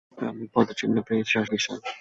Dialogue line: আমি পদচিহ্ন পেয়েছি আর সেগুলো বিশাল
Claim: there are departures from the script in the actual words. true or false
true